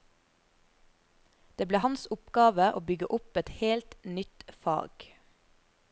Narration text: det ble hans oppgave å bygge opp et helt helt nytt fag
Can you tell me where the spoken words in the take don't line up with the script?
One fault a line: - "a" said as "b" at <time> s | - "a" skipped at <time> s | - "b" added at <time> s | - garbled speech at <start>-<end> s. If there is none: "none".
- "helt" skipped at 4.0 s